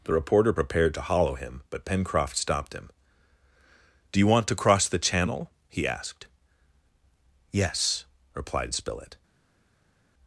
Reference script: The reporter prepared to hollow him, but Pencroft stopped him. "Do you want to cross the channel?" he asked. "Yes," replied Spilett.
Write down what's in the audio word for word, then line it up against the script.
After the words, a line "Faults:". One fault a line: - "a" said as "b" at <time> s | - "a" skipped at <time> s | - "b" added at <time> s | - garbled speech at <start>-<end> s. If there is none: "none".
The reporter prepared to hollow him, but Pencroft stopped him. "Do you want to cross the channel?" he asked. "Yes," replied Spilett.
Faults:
none